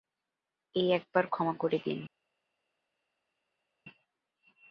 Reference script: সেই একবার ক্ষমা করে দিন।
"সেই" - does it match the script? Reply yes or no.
no